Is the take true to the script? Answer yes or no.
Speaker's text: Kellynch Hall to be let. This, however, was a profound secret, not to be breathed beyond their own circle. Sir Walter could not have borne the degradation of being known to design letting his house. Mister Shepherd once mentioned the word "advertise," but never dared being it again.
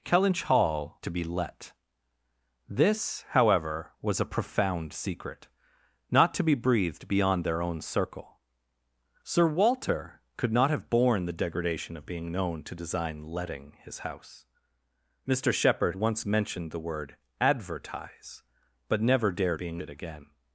yes